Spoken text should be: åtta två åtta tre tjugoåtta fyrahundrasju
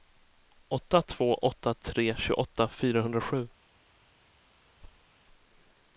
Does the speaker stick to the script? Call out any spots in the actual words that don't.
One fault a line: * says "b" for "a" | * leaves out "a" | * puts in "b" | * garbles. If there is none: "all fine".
all fine